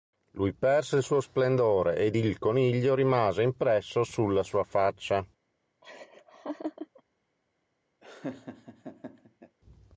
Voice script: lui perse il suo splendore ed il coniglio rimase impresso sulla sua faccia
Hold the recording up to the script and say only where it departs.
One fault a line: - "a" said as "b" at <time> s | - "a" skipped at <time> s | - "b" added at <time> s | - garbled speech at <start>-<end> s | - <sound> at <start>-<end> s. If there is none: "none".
- laugh at 5.8-7.0 s
- laugh at 8.0-9.6 s